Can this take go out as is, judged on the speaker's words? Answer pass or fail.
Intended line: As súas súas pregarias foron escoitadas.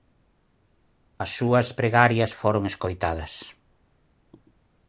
fail